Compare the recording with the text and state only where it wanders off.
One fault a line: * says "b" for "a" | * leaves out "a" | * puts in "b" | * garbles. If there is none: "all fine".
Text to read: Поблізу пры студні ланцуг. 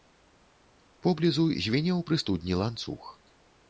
* puts in "звінеў"